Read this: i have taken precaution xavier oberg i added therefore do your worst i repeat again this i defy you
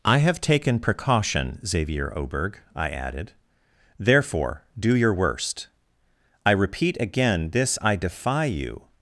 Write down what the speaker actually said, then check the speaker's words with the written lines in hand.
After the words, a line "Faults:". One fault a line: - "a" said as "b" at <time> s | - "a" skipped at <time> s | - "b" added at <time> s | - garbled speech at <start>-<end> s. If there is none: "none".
i have taken precaution xavier oberg i added therefore do your worst i repeat again this i defy you
Faults:
none